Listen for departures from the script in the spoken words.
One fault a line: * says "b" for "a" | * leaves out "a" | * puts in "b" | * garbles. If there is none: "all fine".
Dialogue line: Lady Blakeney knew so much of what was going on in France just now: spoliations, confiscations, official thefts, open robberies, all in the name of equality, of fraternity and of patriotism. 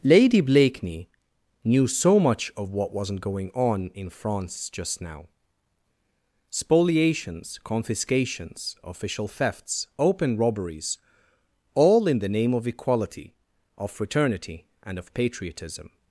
* says "wasn't" for "was"